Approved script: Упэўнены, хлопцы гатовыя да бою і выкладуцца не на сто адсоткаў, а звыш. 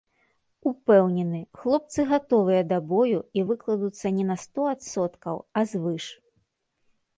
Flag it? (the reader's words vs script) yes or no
no